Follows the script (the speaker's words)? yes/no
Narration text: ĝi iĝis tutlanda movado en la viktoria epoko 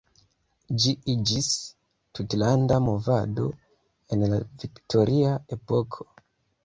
yes